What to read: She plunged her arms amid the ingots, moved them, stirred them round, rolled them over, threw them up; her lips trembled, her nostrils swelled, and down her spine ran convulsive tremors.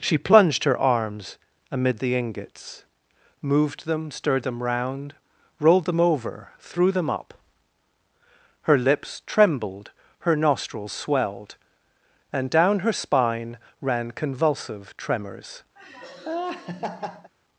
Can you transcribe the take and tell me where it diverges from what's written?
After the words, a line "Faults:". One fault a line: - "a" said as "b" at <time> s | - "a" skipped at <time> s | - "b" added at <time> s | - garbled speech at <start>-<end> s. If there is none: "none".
She plunged her arms amid the ingots, moved them, stirred them round, rolled them over, threw them up; her lips trembled, her nostrils swelled, and down her spine ran convulsive tremors.
Faults:
none